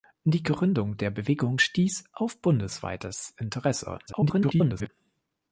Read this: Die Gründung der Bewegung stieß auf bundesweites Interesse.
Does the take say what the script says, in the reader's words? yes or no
no